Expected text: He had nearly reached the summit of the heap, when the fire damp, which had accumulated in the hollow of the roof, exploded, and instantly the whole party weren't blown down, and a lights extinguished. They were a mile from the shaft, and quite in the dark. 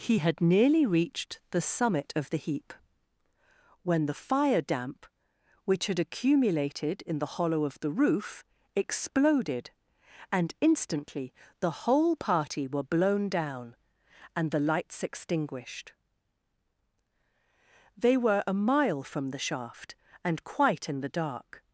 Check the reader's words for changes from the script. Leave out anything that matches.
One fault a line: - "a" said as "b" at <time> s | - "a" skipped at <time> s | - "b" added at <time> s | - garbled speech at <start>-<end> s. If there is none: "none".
- "weren't" said as "were" at 12.7 s
- "a" said as "the" at 14.5 s